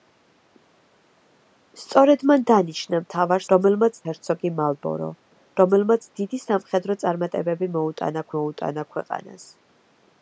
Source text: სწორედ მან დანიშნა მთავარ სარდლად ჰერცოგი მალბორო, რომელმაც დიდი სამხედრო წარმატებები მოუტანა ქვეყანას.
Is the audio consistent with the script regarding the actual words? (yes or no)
no